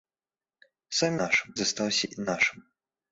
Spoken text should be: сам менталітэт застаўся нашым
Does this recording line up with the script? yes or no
no